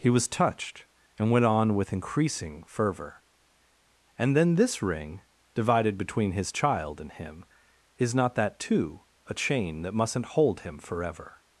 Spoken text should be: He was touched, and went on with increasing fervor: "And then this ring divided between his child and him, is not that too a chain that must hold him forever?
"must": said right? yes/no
no